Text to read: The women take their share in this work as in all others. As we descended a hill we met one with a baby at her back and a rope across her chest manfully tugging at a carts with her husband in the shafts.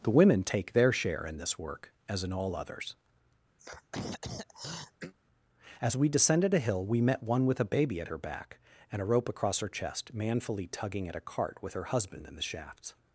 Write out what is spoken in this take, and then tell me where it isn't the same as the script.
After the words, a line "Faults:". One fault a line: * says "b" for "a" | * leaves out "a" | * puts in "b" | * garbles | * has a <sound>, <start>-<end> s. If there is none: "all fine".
The women take their share in this work as in all others. As we descended a hill we met one with a baby at her back and a rope across her chest manfully tugging at a cart with her husband in the shafts.
Faults:
* has a throat clearing, 3.6-5.1 s
* says "cart" for "carts"